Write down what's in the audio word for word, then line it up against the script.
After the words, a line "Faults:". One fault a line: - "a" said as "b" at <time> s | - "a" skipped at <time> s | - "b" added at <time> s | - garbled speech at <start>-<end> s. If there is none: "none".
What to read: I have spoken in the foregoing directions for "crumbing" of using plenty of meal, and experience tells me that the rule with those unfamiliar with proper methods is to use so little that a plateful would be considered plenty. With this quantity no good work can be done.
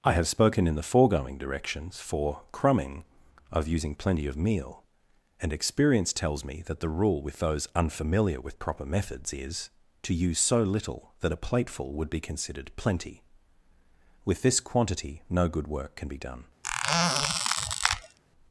I have spoken in the foregoing directions for "crumbing" of using plenty of meal, and experience tells me that the rule with those unfamiliar with proper methods is to use so little that a plateful would be considered plenty. With this quantity no good work can be done.
Faults:
none